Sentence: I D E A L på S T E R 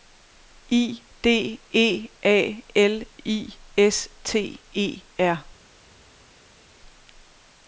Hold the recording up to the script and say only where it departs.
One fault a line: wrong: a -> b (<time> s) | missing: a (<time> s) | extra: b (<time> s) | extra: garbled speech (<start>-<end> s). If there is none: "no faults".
wrong: på -> I (3.2 s)